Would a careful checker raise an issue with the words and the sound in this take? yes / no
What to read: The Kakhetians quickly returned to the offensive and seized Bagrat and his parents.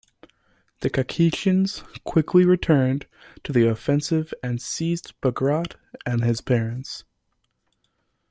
no